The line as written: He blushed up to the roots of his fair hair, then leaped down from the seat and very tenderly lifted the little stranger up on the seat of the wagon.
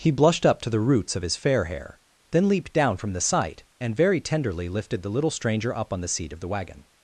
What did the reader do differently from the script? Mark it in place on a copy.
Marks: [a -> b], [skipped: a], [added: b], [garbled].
He blushed up to the roots of his fair hair, then leaped down from the [seat -> sight] and very tenderly lifted the little stranger up on the seat of the wagon.